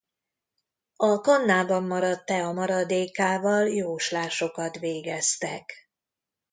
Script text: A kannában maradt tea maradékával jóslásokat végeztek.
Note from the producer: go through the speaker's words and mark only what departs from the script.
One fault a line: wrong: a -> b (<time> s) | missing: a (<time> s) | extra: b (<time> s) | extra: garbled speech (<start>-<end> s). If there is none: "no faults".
no faults